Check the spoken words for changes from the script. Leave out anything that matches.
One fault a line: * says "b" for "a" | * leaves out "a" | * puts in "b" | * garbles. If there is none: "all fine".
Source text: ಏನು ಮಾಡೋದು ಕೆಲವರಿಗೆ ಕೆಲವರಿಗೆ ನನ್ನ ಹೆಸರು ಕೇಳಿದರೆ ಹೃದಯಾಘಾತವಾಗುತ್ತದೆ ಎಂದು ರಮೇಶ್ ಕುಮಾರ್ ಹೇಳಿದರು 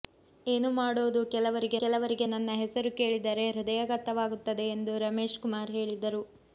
all fine